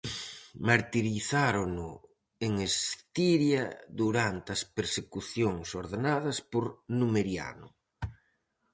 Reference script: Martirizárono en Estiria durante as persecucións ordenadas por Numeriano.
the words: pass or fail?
pass